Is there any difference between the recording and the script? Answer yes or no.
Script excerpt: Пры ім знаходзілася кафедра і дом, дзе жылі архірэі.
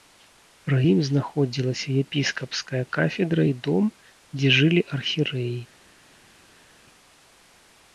yes